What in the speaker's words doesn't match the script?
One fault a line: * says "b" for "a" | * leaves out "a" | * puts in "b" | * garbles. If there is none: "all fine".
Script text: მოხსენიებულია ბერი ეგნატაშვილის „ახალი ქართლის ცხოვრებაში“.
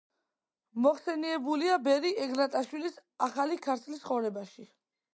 all fine